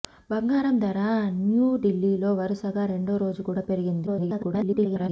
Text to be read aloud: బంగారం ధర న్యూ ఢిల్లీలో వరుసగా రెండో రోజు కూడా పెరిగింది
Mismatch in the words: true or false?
true